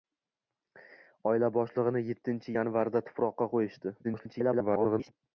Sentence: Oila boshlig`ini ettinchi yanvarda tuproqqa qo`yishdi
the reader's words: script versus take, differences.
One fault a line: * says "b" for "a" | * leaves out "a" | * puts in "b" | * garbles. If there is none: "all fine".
* garbles